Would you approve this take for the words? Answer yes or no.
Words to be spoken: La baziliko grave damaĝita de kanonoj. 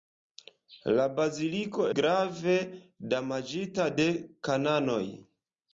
yes